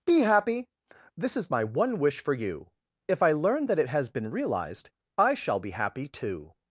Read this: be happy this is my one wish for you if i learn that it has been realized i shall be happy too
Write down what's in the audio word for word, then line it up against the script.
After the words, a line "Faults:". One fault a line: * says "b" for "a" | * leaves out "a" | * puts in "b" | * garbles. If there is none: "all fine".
be happy this is my one wish for you if i learn that it has been realized i shall be happy too
Faults:
all fine